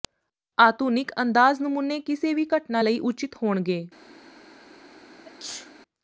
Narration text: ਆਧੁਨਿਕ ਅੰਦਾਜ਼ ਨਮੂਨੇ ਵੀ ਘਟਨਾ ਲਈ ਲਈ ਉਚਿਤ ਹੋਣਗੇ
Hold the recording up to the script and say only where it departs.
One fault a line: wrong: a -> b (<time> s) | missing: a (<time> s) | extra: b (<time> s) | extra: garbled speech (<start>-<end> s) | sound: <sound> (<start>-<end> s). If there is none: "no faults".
extra: ਕਿਸੇ (2.0 s)
missing: ਲਈ (3.0 s)
sound: sneeze (5.2-5.7 s)